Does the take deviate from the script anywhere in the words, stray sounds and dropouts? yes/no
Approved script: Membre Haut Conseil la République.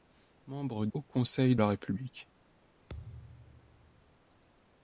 yes